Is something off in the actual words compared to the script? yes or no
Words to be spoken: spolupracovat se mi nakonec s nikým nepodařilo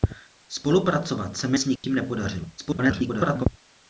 yes